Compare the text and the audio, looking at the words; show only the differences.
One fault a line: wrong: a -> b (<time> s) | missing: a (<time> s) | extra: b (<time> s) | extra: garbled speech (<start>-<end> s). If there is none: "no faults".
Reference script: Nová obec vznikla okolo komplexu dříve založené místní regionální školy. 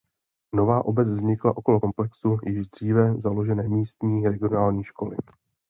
extra: již (2.5 s)